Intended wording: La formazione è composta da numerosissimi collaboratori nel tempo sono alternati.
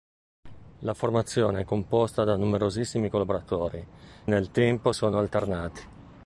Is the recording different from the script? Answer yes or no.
no